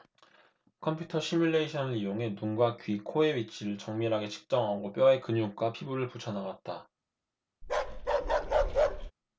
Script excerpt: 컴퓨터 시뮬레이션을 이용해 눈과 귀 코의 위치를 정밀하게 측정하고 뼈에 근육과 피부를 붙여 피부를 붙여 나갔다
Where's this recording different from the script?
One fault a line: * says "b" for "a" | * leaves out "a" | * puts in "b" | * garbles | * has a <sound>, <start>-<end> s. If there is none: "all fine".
* leaves out "피부를 붙여"
* has a bark, 7.6-9.1 s